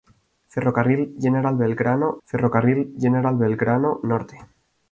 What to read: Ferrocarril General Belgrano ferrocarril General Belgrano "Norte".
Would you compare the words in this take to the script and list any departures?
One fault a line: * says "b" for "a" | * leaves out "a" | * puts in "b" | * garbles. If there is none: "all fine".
all fine